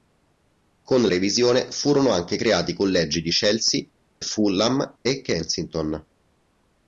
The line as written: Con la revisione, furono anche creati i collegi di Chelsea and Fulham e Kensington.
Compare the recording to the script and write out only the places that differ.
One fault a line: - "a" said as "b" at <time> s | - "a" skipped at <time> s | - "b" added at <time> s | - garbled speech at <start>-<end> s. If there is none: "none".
- "la" skipped at 1.1 s
- "and" skipped at 3.9 s